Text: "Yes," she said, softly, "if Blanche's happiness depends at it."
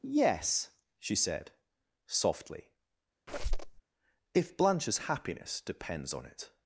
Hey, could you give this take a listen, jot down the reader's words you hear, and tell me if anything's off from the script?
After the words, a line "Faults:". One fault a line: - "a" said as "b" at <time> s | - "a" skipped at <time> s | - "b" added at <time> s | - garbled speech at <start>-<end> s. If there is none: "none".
"Yes," she said, softly, "if Blanche's happiness depends on it."
Faults:
- "at" said as "on" at 6.1 s